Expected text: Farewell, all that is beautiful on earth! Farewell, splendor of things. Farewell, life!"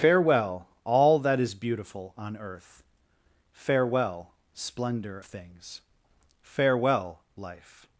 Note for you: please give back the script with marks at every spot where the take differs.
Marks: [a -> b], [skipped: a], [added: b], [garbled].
Farewell, all that is beautiful on earth! Farewell, splendor [skipped: of] things. Farewell, life!"